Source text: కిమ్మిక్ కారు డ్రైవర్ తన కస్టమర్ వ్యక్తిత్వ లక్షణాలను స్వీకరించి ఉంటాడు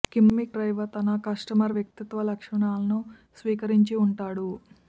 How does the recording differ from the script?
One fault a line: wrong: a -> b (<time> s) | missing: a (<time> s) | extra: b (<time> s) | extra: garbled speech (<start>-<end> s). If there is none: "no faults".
missing: కారు (0.6 s)